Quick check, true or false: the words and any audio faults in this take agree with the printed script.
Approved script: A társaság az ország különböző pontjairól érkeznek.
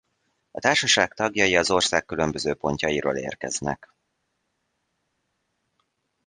false